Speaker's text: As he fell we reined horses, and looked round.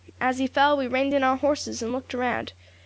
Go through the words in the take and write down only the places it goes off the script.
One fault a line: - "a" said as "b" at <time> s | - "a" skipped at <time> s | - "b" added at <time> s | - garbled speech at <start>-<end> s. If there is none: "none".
- "in our" added at 1.1 s